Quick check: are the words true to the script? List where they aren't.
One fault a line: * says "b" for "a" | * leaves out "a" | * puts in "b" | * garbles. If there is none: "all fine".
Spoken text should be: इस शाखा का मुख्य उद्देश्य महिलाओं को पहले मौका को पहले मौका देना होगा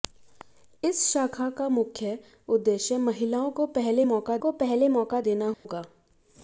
all fine